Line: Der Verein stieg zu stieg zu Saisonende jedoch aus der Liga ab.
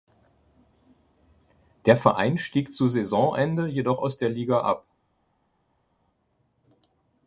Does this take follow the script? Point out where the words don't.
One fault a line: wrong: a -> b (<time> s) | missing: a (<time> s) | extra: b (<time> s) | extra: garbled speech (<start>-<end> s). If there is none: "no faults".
missing: stieg zu (2.9 s)